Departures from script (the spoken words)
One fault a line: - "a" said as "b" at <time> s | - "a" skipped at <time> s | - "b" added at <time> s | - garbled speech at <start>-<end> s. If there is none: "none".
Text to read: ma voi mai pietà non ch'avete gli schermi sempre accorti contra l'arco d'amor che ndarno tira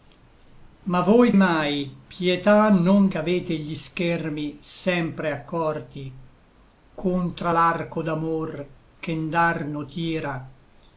none